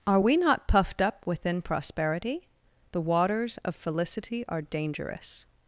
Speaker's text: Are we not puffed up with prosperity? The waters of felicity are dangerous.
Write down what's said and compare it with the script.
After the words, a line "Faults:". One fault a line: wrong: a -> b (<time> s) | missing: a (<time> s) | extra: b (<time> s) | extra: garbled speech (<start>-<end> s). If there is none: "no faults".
Are we not puffed up within prosperity? The waters of felicity are dangerous.
Faults:
wrong: with -> within (1.3 s)